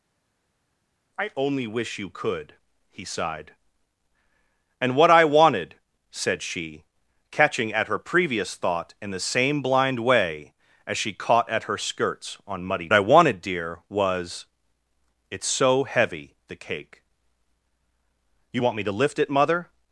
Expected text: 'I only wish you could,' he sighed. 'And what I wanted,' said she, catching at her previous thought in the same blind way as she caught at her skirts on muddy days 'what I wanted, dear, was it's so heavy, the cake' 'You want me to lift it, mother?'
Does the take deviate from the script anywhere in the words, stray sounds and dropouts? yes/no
yes